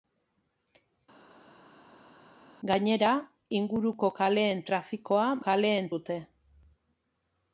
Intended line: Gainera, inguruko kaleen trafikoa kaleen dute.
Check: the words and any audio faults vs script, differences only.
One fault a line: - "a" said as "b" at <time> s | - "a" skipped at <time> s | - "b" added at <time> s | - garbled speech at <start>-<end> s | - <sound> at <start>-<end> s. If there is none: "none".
none